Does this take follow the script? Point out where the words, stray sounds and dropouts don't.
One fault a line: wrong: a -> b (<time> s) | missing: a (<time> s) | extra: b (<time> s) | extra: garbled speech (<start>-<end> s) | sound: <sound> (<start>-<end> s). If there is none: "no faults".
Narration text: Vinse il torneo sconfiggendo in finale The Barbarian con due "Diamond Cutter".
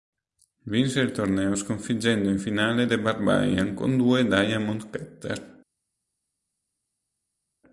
no faults